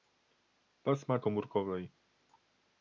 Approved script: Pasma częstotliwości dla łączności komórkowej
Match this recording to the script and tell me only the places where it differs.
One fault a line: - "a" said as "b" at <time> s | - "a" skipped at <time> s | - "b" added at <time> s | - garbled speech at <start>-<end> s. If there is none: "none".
- "częstotliwości dla łączności" skipped at 1.2 s